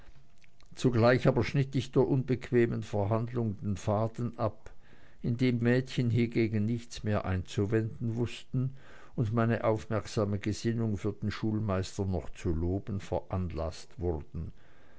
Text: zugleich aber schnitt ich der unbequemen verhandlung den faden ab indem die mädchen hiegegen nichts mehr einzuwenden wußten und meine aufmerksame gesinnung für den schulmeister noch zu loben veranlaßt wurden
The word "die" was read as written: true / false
false